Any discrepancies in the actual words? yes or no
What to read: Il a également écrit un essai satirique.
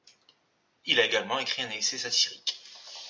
no